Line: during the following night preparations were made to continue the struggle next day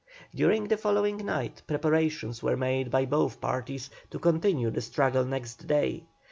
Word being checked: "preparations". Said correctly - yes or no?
yes